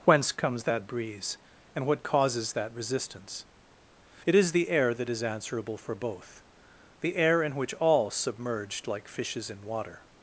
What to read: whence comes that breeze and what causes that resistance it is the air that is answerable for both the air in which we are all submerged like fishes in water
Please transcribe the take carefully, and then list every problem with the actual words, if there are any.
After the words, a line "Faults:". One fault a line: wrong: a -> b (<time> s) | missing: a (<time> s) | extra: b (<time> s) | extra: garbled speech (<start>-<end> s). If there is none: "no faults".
whence comes that breeze and what causes that resistance it is the air that is answerable for both the air in which all submerged like fishes in water
Faults:
missing: we are (7.7 s)